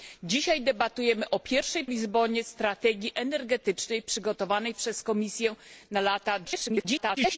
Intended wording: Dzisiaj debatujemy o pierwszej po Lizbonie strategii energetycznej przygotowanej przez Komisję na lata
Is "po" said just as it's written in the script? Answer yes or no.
no